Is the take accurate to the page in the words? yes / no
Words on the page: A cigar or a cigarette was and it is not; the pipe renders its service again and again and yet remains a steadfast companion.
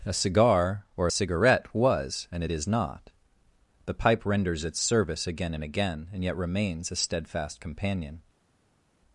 yes